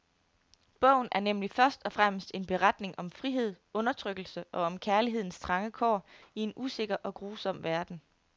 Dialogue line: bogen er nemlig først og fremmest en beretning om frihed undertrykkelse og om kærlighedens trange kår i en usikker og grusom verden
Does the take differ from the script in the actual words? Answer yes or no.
no